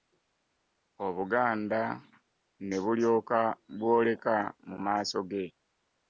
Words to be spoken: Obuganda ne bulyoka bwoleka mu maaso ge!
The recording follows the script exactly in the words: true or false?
true